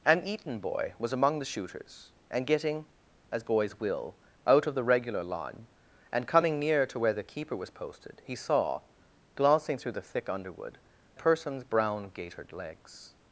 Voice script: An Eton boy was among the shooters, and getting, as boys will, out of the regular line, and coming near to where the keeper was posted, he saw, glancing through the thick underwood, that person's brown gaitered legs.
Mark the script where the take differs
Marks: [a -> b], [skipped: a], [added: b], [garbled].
An Eton boy was among the shooters, and getting, as boys will, out of the regular line, and coming near to where the keeper was posted, he saw, glancing through the thick underwood, [skipped: that] person's brown gaitered legs.